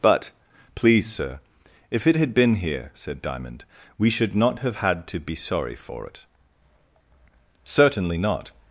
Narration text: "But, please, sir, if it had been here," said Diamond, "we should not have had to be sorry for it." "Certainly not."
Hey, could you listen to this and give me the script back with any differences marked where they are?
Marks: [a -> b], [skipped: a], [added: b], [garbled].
"But, please, sir, if it had been here," said Diamond, "we should not have had to be sorry for it." "Certainly not."